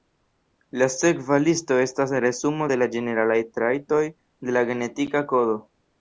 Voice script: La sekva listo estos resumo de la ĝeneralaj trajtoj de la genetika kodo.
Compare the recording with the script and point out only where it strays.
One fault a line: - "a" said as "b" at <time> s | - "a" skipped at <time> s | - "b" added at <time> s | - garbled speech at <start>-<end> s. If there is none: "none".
- "estos" said as "estas" at 1.8 s